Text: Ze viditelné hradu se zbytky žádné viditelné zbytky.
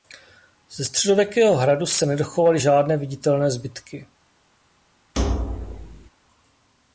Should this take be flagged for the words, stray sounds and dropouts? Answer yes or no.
yes